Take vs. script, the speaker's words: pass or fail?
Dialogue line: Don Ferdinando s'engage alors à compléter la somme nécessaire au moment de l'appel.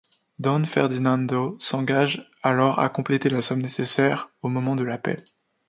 pass